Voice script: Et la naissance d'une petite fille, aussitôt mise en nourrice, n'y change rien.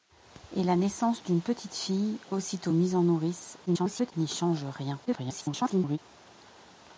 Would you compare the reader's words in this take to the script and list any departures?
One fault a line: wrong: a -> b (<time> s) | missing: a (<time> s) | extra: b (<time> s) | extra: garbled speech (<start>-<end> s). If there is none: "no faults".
extra: garbled speech (3.7-4.1 s)
extra: garbled speech (5.0-6.0 s)